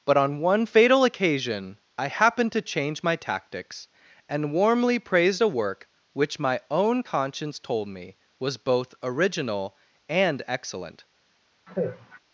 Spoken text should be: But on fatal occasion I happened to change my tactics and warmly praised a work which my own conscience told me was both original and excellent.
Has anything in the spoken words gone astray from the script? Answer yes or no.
yes